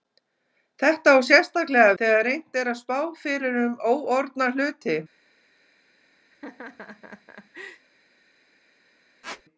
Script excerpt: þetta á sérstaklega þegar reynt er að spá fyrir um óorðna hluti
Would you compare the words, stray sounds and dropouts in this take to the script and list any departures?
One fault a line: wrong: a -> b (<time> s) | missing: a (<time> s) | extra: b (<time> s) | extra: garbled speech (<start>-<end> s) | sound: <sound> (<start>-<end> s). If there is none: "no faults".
sound: laugh (6.3-7.9 s)
sound: squeak (9.2-9.4 s)